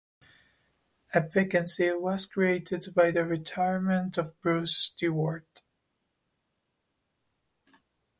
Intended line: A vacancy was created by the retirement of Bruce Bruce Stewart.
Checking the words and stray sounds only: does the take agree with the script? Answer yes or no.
no